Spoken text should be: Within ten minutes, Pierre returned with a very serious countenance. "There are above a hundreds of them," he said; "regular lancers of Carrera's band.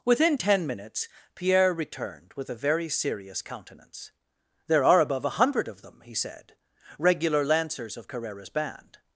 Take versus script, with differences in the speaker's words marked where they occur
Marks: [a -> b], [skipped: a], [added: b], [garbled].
Within ten minutes, Pierre returned with a very serious countenance. "There are above a [hundreds -> hundred] of them," he said; "regular lancers of Carrera's band.